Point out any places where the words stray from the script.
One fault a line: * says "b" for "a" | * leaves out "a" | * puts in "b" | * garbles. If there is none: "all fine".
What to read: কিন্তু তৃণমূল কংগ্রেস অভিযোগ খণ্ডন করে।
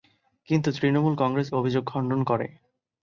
all fine